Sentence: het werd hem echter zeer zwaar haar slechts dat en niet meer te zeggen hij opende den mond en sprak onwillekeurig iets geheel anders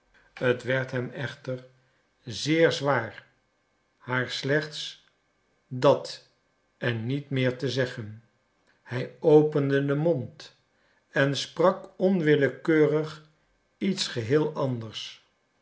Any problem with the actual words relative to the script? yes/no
no